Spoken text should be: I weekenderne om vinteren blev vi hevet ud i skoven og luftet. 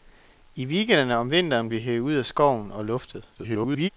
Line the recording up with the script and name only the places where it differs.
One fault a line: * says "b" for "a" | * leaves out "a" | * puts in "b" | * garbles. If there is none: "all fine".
* leaves out "blev"
* garbles